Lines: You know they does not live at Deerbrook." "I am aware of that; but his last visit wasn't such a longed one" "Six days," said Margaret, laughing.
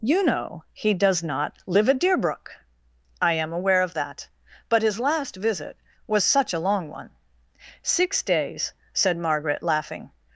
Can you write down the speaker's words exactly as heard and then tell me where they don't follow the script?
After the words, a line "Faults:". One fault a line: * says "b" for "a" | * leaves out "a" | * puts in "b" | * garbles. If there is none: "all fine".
You know he does not live at Deerbrook." "I am aware of that; but his last visit was such a long one" "Six days," said Margaret, laughing.
Faults:
* says "he" for "they"
* says "was" for "wasn't"
* says "long" for "longed"